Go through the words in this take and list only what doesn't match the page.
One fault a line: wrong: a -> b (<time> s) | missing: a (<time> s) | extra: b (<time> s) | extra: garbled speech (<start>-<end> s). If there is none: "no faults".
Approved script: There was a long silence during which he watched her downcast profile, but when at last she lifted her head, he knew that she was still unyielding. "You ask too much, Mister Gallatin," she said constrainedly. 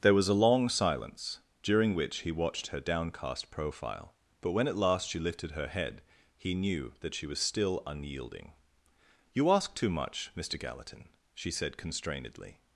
no faults